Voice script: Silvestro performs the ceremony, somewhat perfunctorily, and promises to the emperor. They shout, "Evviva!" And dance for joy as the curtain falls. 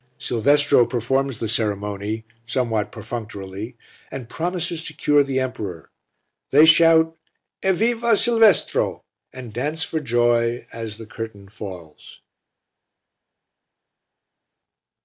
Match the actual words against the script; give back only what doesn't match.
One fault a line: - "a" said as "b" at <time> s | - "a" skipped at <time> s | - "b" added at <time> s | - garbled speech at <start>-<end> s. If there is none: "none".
- "cure" added at 5.0 s
- "Silvestro" added at 8.2 s